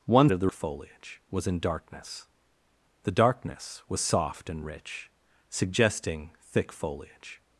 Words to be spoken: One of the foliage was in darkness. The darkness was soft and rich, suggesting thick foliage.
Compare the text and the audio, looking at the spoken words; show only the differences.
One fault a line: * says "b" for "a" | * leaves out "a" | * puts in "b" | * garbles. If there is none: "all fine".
all fine